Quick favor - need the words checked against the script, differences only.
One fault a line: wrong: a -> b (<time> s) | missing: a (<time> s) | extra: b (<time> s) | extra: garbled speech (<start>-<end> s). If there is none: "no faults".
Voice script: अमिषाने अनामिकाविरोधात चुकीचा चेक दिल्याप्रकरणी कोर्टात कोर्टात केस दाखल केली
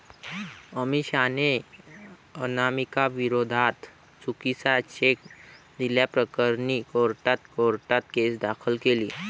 no faults